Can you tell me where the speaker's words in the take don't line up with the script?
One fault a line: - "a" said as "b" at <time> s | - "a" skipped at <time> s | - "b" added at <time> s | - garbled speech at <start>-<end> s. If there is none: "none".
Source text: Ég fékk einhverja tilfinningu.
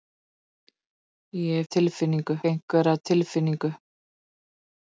- "fékk" said as "tilfinningu" at 1.6 s